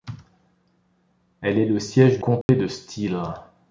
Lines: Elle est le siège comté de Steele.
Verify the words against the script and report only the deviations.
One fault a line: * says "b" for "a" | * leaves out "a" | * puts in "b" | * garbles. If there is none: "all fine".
all fine